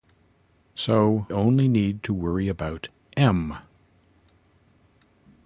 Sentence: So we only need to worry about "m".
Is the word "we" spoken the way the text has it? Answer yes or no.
no